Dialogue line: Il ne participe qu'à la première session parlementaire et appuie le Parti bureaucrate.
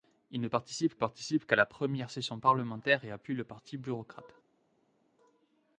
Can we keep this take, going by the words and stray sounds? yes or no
no